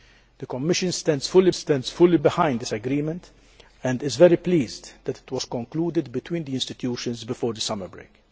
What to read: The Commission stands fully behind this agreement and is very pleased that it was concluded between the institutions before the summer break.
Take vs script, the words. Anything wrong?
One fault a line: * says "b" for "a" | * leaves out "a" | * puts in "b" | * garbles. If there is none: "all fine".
* puts in "stands fully"